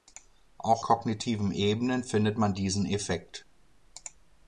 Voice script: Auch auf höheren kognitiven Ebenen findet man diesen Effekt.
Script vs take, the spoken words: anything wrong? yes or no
yes